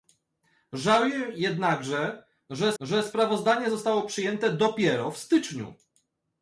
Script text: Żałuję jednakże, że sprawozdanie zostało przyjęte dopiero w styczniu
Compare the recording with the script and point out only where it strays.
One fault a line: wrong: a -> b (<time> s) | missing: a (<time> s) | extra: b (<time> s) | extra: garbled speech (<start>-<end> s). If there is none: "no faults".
extra: że (2.8 s)